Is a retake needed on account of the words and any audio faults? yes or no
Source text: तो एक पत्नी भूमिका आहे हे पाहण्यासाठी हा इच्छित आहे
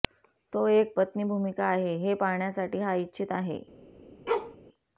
yes